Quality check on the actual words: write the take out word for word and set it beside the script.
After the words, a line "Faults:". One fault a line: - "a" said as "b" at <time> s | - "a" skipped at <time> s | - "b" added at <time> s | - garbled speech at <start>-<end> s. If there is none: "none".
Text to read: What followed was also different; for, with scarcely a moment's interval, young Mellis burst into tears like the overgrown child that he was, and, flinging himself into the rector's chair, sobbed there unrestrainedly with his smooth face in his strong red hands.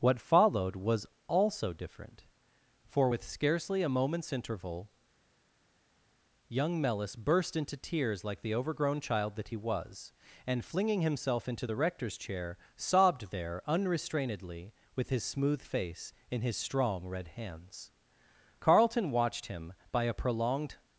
What followed was also different; for, with scarcely a moment's interval, young Mellis burst into tears like the overgrown child that he was, and, flinging himself into the rector's chair, sobbed there unrestrainedly with his smooth face in his strong red hands. Carlton watched him by a prolonged
Faults:
- "Carlton watched him by a prolonged" added at 18.6 s